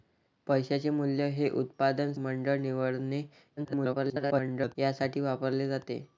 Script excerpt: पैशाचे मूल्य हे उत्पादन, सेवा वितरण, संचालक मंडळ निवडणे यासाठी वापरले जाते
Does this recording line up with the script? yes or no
no